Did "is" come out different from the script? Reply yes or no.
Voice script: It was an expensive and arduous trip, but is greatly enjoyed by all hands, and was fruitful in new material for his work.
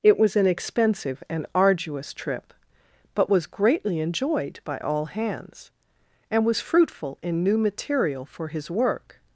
yes